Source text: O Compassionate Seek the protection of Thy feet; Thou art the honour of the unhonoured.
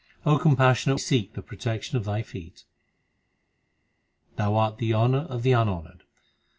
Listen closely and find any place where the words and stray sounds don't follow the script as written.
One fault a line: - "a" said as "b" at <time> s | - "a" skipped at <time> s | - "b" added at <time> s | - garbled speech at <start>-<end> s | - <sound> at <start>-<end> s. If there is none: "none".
none